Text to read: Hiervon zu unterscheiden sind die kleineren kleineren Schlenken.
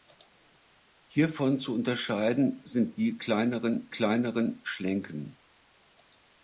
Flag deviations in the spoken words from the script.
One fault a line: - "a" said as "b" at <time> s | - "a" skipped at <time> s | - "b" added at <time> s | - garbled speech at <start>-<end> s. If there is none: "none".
none